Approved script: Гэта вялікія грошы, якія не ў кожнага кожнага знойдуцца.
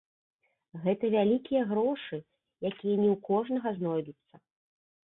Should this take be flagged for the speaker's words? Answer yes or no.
yes